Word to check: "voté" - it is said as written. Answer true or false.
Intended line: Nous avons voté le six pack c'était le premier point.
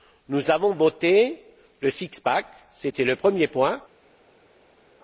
true